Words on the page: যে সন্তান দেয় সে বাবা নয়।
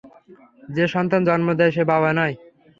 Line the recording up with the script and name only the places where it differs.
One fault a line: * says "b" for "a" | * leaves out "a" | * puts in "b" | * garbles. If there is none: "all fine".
* puts in "জন্ম"